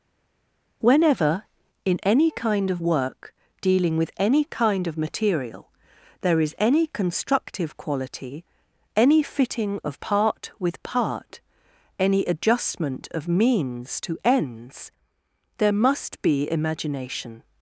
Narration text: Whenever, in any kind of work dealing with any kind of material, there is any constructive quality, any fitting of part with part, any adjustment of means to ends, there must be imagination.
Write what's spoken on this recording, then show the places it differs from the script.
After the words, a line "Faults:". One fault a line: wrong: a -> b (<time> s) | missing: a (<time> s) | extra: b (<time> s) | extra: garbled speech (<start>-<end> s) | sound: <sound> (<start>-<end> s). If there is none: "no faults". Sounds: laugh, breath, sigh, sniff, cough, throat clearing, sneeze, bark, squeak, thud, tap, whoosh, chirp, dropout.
Whenever, in any kind of work dealing with any kind of material, there is any constructive quality, any fitting of part with part, any adjustment of means to ends, there must be imagination.
Faults:
no faults